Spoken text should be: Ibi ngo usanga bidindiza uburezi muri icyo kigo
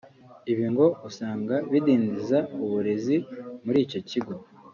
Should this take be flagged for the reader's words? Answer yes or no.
no